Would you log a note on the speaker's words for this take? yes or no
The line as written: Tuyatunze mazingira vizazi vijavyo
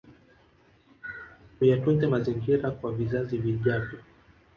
yes